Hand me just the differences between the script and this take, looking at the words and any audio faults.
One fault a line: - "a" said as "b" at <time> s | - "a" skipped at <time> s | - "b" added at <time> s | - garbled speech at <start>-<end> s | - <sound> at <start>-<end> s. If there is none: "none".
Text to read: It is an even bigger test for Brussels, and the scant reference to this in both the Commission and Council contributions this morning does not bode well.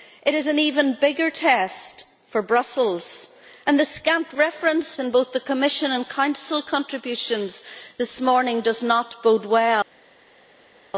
- "to this" skipped at 5.0 s